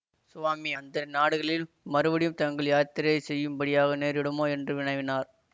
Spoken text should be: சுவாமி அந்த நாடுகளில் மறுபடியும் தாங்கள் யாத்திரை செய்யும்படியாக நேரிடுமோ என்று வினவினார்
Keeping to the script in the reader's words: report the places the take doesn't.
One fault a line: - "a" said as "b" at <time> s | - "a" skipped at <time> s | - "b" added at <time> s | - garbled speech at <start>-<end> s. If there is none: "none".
none